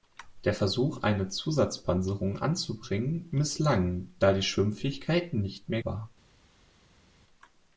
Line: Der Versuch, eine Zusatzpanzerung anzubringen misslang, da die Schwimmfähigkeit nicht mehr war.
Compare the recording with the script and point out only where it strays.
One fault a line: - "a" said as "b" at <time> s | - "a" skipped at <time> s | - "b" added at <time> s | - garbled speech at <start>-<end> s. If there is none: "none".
none